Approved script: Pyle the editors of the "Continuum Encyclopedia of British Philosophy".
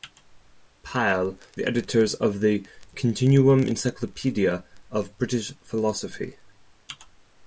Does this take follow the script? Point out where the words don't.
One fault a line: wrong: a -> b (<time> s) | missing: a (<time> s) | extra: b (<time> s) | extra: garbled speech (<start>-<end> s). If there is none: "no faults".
no faults